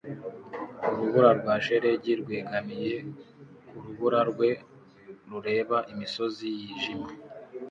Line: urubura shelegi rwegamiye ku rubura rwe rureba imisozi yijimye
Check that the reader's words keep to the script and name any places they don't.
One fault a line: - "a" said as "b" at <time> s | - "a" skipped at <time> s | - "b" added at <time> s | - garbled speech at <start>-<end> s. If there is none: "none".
- "rwa" added at 1.4 s